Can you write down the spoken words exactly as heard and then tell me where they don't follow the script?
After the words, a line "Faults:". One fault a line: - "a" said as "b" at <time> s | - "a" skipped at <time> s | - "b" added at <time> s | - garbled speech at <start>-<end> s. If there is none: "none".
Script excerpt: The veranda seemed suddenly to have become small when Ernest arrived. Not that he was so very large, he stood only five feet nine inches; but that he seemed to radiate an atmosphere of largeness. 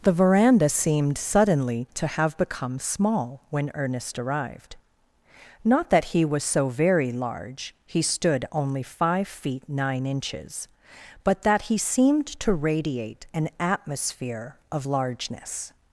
The veranda seemed suddenly to have become small when Ernest arrived. Not that he was so very large, he stood only five feet nine inches; but that he seemed to radiate an atmosphere of largeness.
Faults:
none